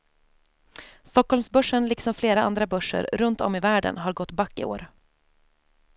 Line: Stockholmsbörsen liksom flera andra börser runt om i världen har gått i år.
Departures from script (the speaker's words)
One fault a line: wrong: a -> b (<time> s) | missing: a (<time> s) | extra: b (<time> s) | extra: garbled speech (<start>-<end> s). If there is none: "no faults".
extra: back (4.3 s)